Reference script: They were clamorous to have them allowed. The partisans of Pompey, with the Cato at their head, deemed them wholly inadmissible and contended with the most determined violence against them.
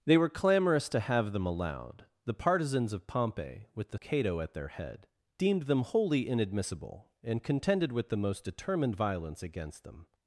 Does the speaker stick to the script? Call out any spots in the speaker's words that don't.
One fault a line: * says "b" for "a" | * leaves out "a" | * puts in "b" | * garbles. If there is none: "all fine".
all fine